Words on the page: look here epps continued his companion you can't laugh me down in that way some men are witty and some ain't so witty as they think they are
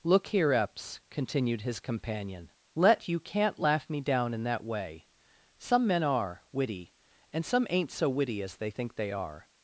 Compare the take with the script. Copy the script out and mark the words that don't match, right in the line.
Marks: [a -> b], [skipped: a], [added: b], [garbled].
look here epps continued his companion [added: let] you can't laugh me down in that way some men are witty and some ain't so witty as they think they are